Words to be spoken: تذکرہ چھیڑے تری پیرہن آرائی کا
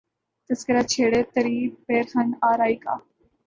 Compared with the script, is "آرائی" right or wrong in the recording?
right